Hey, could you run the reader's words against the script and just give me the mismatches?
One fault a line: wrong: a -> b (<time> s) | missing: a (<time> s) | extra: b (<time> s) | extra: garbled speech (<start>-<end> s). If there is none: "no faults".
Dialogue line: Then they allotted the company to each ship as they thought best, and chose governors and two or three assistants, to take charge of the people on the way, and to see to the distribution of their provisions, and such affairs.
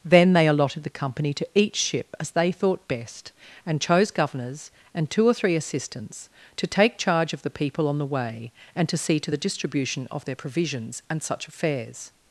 no faults